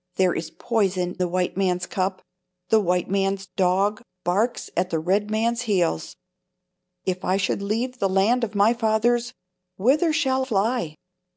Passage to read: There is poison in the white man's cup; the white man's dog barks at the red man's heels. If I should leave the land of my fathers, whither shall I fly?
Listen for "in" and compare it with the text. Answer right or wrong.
wrong